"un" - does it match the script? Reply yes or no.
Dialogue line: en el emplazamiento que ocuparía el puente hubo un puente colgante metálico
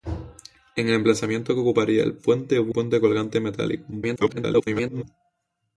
no